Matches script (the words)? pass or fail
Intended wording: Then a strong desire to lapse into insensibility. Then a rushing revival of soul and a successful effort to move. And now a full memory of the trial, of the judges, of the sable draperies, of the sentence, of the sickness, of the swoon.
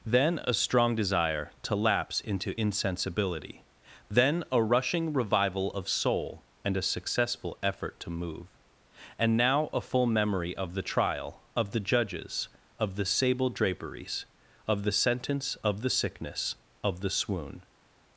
pass